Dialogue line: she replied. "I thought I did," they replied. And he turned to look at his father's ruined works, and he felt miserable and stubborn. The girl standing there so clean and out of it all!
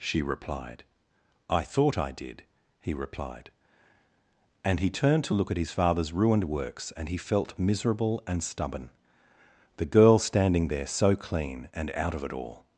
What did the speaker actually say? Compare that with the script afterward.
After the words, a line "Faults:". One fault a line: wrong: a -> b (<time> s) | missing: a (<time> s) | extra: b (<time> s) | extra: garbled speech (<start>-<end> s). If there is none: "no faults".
she replied. "I thought I did," he replied. And he turned to look at his father's ruined works, and he felt miserable and stubborn. The girl standing there so clean and out of it all!
Faults:
wrong: they -> he (2.8 s)